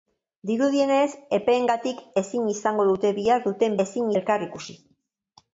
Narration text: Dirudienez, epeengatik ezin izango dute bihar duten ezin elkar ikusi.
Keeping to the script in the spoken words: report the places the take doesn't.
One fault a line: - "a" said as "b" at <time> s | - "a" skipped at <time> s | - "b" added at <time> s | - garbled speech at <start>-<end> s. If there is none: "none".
none